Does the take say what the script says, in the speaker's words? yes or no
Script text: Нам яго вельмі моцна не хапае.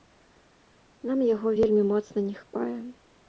yes